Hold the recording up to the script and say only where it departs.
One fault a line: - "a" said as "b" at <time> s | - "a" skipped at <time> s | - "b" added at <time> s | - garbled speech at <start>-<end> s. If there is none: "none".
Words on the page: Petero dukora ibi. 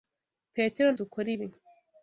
none